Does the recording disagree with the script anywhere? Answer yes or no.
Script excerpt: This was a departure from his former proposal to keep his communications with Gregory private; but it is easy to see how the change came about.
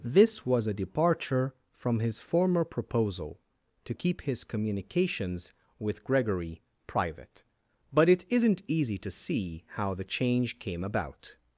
yes